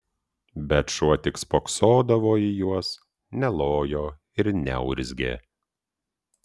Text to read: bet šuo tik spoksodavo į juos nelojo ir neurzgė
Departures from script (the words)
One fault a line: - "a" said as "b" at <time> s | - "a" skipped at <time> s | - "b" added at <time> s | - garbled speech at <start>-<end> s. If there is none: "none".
none